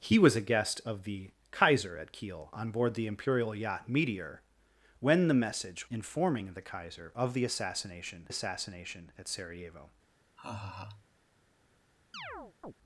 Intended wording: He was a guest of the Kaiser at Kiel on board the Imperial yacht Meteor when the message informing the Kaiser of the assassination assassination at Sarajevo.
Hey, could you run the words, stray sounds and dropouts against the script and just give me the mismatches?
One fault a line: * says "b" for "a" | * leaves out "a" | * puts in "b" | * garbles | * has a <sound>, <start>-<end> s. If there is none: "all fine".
* has a laugh, 10.4-11.1 s
* has a chirp, 12.1-12.7 s